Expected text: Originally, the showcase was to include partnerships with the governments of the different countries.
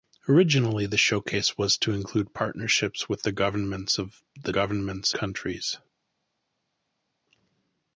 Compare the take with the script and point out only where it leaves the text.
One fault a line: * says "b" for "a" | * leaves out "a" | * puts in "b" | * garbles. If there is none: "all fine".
* says "governments" for "different"